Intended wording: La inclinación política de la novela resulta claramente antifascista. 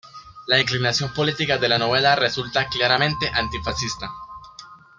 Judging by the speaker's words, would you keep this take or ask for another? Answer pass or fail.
pass